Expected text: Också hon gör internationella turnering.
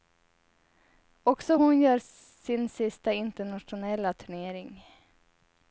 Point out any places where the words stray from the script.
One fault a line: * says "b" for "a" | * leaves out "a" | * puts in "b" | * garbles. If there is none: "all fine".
* puts in "sin sista"